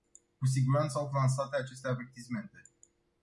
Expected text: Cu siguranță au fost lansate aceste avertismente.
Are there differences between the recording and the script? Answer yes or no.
yes